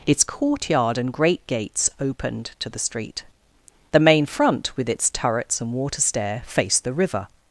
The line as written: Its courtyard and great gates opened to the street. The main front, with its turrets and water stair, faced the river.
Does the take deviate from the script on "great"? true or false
false